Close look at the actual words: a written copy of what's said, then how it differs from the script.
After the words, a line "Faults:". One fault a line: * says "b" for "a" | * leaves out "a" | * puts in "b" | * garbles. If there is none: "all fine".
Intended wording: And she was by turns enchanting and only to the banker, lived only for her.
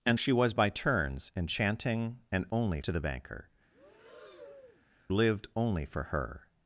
And she was by turns enchanting and only to the banker, lived only for her.
Faults:
all fine